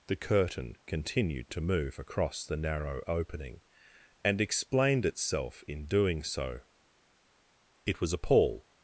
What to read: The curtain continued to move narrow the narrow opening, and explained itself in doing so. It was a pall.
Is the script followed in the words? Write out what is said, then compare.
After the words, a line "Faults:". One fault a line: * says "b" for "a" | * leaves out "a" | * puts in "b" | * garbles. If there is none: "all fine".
The curtain continued to move across the narrow opening, and explained itself in doing so. It was a pall.
Faults:
* says "across" for "narrow"